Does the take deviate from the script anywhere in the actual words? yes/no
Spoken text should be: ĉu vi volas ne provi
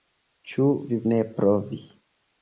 yes